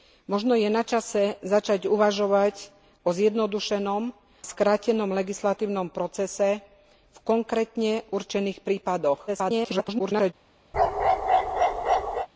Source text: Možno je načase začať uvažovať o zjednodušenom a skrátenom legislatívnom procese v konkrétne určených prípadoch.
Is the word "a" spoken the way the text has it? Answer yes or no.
no